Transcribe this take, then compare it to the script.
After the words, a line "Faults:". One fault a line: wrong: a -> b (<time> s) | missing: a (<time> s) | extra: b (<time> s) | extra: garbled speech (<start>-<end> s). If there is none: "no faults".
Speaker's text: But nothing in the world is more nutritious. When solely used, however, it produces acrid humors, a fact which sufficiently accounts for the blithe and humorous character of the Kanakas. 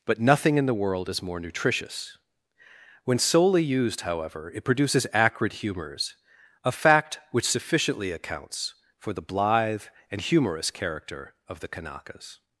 But nothing in the world is more nutritious. When solely used, however, it produces acrid humors, a fact which sufficiently accounts for the blithe and humorous character of the Kanakas.
Faults:
no faults